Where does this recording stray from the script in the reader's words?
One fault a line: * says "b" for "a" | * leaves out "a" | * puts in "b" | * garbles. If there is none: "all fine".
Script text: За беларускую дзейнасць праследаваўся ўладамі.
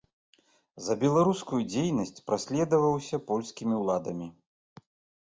* puts in "польскімі"